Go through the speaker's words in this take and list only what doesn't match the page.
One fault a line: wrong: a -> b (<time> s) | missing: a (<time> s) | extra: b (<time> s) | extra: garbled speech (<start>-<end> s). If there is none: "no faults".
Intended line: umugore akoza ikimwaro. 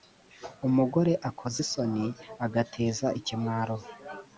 extra: isoni agateza (1.6 s)